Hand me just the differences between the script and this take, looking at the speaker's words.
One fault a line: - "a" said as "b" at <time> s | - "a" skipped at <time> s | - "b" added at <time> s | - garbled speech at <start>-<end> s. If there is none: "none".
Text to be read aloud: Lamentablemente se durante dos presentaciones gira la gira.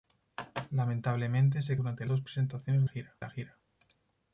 none